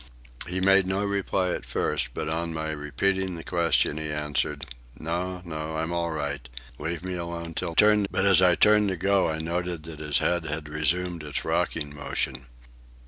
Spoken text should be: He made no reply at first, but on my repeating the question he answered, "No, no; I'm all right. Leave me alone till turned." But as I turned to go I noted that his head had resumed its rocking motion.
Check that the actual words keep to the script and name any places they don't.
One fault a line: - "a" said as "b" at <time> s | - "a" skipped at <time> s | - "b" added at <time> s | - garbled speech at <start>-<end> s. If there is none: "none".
none